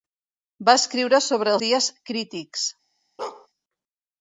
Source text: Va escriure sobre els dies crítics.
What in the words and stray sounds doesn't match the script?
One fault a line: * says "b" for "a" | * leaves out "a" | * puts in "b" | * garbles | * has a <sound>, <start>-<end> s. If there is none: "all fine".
* leaves out "els"
* has a bark, 3.2-3.5 s